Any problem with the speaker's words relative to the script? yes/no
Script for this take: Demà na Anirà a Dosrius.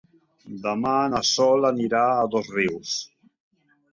yes